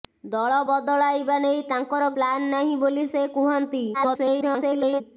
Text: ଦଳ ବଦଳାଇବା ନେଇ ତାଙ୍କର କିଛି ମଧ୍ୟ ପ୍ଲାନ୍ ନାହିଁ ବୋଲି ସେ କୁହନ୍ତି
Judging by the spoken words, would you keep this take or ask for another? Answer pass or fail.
fail